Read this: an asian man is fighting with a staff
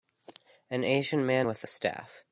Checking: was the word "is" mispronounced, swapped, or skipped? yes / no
yes